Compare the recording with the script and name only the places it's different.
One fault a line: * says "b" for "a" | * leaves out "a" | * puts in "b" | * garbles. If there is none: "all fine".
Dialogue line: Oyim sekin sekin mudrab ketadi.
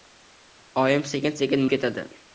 * leaves out "mudrab"